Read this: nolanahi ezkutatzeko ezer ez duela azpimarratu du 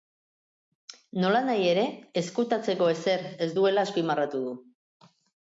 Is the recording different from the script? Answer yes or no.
yes